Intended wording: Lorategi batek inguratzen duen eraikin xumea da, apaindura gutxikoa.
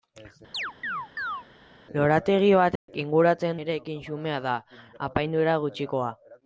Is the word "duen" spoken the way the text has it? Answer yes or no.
no